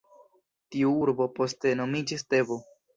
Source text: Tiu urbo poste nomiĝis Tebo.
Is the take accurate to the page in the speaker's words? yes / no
yes